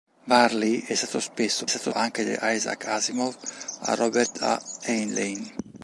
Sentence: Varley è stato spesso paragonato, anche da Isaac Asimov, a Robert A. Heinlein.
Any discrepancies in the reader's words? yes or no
yes